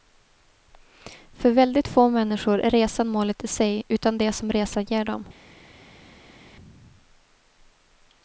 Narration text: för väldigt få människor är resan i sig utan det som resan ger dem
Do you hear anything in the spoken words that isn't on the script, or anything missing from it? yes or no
yes